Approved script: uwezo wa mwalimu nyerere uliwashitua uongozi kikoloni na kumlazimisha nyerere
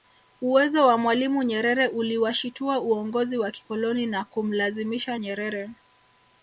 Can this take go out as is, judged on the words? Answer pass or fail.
fail